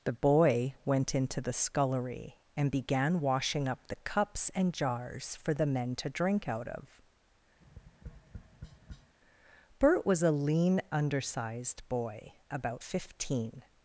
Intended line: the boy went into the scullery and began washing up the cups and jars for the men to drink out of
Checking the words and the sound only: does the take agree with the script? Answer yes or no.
no